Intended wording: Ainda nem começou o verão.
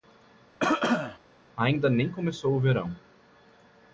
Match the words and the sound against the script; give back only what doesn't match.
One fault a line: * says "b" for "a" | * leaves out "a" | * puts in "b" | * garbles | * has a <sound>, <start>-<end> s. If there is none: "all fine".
* has a cough, 0.6-1.2 s